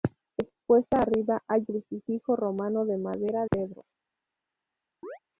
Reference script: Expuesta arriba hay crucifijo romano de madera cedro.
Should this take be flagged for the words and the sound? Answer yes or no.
yes